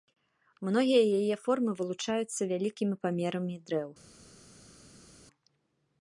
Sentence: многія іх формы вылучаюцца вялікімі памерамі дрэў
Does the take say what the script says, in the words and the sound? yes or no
no